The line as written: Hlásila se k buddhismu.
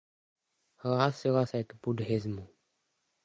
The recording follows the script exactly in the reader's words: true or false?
true